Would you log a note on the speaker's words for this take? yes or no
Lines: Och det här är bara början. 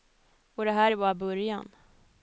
no